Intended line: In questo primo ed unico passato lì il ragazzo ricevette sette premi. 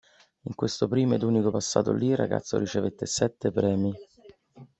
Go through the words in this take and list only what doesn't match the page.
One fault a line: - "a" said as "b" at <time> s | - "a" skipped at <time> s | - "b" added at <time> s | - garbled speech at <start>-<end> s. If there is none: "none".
none